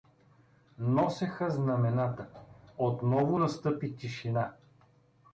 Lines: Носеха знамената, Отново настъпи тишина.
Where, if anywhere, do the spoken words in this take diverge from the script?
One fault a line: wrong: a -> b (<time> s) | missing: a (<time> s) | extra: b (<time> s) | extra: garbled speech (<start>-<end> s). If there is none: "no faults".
no faults